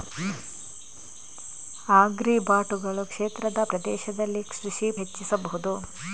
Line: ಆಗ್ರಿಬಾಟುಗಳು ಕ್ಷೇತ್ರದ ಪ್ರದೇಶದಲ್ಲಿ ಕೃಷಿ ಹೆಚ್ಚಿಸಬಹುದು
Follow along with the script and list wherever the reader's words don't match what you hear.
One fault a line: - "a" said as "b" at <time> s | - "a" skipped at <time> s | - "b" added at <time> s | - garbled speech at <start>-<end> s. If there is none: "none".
none